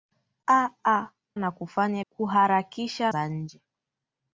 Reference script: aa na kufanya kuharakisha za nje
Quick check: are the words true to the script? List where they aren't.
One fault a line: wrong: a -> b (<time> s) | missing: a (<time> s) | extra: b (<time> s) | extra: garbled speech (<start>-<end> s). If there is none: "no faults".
no faults